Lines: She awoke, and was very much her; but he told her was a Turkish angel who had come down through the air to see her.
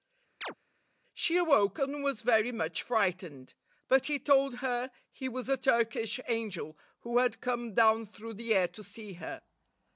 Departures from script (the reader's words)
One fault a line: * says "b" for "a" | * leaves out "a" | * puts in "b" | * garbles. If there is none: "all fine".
* says "frightened" for "her"
* puts in "he"